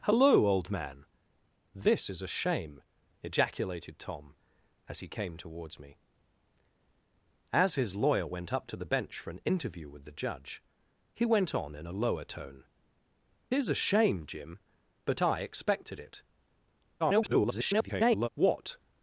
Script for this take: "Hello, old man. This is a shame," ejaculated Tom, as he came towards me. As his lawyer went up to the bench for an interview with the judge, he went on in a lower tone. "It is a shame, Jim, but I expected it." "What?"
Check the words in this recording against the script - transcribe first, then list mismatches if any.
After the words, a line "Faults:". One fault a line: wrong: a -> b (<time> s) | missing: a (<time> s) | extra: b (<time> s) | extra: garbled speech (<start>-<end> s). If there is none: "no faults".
"Hello, old man. This is a shame," ejaculated Tom, as he came towards me. As his lawyer went up to the bench for an interview with the judge, he went on in a lower tone. "Is a shame, Jim, but I expected it." [garbled] "What?"
Faults:
missing: It (12.6 s)
extra: garbled speech (17.0-18.3 s)